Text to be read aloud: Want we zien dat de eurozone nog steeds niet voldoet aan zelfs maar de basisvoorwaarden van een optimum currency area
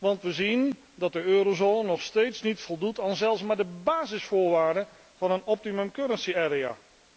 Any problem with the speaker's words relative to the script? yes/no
no